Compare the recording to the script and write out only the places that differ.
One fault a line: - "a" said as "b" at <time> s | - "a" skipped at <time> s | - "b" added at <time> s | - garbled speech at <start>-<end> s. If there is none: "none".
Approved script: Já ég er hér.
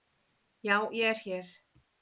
none